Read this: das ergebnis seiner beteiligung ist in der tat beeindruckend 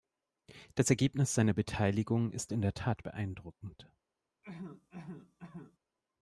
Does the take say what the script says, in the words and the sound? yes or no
no